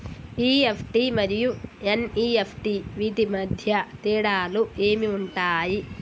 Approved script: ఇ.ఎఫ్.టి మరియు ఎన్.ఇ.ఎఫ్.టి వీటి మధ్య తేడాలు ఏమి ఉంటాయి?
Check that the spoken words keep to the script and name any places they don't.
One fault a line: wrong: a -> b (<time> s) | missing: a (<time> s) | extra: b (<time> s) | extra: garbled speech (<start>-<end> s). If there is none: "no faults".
no faults